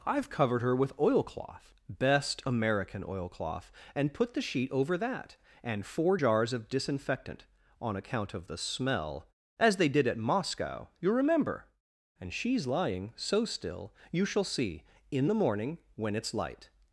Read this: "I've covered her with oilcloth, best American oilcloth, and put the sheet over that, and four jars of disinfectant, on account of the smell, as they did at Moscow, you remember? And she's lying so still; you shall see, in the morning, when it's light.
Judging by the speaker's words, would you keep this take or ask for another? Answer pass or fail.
pass